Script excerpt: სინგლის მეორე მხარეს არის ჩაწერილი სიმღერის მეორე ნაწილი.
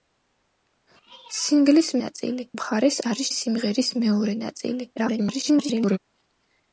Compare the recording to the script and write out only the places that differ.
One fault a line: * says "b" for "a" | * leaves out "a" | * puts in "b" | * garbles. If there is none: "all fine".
* says "ნაწილი" for "მეორე"
* leaves out "ჩაწერილი"
* garbles